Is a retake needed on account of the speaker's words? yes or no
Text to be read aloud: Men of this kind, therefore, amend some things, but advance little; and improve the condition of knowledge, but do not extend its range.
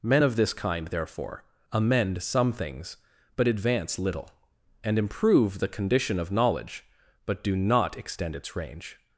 no